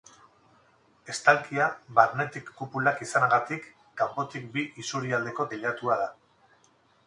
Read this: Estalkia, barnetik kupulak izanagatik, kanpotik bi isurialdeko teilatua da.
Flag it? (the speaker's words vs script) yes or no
no